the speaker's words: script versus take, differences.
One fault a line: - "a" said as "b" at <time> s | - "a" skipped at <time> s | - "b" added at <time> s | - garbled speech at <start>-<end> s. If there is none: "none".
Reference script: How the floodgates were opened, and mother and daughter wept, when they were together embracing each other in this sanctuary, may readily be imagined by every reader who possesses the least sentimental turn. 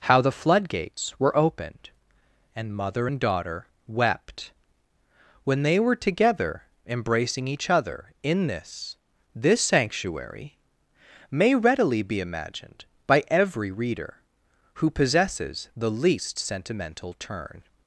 - "this" added at 9.3 s